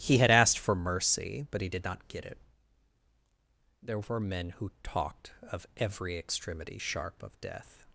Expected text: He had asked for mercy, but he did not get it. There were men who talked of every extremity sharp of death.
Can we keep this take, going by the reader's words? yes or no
yes